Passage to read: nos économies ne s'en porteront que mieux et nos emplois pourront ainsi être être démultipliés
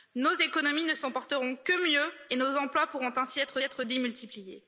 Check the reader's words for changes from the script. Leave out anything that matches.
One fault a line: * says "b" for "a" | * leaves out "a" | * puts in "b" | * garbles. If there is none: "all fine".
all fine